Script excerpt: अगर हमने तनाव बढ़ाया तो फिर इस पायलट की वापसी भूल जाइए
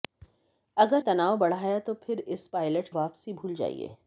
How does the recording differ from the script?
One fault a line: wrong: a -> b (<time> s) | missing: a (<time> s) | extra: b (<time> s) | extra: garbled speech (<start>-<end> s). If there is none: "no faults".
missing: हमने (1.0 s)
missing: की (2.9 s)